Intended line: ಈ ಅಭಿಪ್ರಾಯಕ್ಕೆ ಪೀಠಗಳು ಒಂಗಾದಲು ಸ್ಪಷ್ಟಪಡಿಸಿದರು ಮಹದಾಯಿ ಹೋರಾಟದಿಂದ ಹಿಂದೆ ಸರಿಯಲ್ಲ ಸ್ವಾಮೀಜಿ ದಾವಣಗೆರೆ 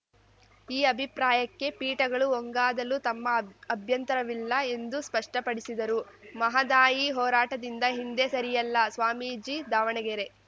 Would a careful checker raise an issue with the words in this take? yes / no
yes